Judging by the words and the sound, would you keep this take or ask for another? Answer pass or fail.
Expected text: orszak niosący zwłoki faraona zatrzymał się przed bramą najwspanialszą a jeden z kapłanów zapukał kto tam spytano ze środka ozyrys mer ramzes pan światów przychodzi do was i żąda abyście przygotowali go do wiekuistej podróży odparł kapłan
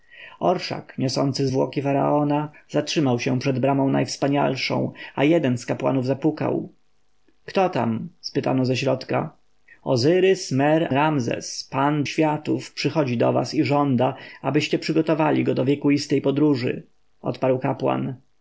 pass